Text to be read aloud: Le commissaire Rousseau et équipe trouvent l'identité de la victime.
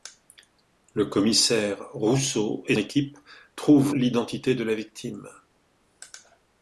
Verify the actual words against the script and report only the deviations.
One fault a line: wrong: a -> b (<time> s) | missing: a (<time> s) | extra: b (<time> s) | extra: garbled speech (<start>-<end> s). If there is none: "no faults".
no faults